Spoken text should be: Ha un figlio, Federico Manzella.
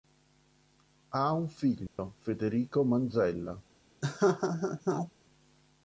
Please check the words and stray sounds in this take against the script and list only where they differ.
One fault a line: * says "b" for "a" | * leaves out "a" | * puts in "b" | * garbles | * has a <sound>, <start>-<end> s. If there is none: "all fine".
* has a dropout, 1.9-2.0 s
* has a laugh, 4.0-5.1 s